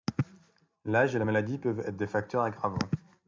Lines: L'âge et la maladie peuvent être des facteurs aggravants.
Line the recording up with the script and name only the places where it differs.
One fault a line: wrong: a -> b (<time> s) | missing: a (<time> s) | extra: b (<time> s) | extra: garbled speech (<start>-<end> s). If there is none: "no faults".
no faults